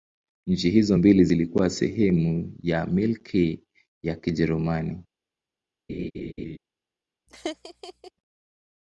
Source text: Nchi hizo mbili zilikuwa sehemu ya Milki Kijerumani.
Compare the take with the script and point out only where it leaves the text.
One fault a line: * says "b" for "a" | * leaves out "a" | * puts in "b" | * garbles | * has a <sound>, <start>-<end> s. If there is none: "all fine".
* puts in "ya"
* has a laugh, 5.9-6.6 s
* has a laugh, 7.3-8.1 s